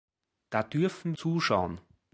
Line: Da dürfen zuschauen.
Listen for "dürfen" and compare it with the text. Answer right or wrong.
right